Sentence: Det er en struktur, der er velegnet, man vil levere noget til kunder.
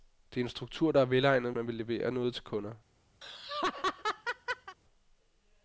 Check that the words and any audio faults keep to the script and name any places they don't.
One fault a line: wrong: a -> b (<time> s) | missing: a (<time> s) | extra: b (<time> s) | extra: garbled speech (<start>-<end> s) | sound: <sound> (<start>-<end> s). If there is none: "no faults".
sound: laugh (3.2-4.8 s)